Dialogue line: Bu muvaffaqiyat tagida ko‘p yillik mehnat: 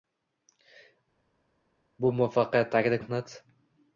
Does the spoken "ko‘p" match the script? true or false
false